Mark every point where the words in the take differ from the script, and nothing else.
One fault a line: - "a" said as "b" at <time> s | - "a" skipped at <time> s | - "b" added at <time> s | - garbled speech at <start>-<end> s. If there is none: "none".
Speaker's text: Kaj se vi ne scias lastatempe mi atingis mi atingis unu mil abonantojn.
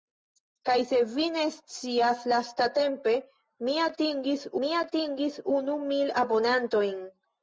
none